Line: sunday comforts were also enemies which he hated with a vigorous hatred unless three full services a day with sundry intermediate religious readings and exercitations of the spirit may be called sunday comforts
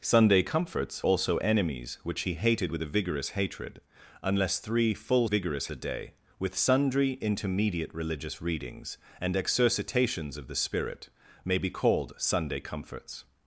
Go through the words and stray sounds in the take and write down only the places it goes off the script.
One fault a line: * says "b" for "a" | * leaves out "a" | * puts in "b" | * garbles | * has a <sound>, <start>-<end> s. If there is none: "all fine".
* leaves out "were"
* says "vigorous" for "services"